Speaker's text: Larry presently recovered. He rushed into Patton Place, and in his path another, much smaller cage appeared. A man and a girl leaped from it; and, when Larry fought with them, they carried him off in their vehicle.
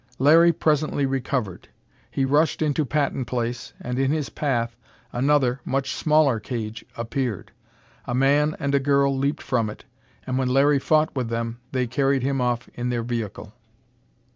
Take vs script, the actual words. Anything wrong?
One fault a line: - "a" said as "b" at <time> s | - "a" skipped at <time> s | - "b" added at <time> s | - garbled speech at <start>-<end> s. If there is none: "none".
none